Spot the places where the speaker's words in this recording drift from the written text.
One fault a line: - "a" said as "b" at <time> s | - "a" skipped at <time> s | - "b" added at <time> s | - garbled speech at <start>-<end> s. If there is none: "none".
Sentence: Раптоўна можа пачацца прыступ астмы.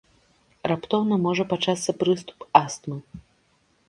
none